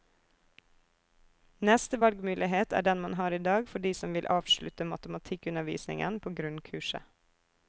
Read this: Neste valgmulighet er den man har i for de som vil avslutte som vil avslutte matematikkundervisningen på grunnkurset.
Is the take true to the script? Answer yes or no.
no